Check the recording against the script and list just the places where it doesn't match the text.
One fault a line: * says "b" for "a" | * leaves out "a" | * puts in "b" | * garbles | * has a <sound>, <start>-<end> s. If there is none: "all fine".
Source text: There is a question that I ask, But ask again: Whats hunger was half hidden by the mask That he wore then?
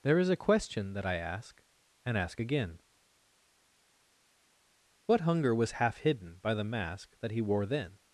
* says "And" for "But"
* says "What" for "Whats"